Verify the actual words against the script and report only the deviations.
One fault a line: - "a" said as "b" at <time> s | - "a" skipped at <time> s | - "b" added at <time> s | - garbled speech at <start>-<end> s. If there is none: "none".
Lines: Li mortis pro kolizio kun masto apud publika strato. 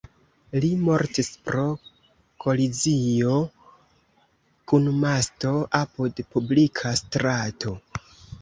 none